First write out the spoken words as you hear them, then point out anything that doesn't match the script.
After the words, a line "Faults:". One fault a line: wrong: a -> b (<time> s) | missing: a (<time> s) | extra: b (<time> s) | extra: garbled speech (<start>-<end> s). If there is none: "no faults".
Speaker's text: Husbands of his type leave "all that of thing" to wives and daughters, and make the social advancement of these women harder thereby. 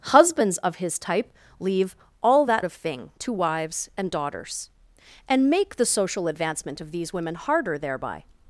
Husbands of his type leave "all that of thing" to wives and daughters, and make the social advancement of these women harder thereby.
Faults:
no faults